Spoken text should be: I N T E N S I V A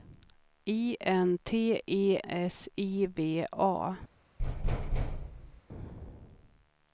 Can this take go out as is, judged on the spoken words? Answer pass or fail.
fail